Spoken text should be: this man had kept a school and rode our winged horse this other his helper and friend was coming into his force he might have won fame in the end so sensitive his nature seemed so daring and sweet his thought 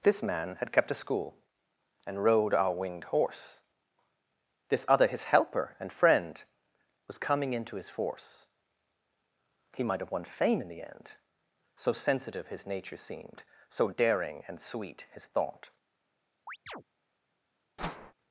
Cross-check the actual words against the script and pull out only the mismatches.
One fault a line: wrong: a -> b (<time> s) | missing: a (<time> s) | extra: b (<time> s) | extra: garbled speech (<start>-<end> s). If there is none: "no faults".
no faults